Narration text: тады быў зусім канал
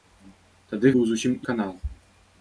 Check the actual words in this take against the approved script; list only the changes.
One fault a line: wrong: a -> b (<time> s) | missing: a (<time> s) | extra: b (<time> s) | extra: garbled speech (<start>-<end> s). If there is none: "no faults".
no faults